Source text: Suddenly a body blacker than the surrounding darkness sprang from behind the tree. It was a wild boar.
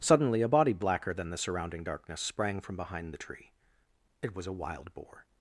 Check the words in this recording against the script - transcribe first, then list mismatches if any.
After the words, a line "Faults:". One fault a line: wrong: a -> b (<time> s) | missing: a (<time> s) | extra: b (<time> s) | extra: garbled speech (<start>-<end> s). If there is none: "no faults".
Suddenly a body blacker than the surrounding darkness sprang from behind the tree. It was a wild boar.
Faults:
no faults